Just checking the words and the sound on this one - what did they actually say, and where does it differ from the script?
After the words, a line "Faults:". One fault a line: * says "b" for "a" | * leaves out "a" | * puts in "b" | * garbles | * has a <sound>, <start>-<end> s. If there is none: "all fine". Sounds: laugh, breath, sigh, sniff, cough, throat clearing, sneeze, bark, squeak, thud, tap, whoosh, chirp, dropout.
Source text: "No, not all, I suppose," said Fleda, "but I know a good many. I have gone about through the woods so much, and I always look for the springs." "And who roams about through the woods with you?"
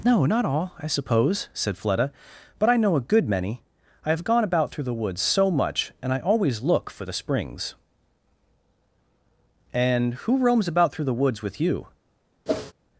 "No, not all, I suppose," said Fleda, "but I know a good many. I have gone about through the woods so much, and I always look for the springs." "And who roams about through the woods with you?"
Faults:
* has a whoosh, 12.5-12.7 s